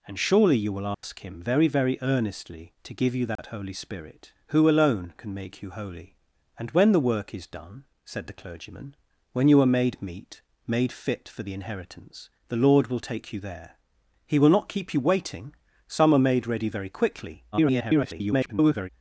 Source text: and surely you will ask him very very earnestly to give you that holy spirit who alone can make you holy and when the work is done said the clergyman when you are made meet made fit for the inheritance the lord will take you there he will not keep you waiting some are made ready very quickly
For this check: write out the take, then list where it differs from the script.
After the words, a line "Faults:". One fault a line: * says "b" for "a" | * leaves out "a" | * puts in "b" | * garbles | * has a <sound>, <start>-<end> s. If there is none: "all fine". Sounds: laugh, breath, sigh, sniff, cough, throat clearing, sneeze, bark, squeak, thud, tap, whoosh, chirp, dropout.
and surely you will ask him very very earnestly to give you that holy spirit who alone can make you holy and when the work is done said the clergyman when you are made meet made fit for the inheritance the lord will take you there he will not keep you waiting some are made ready very quickly [garbled]
Faults:
* has a dropout, 0.9-1.0 s
* has a dropout, 3.4-3.4 s
* garbles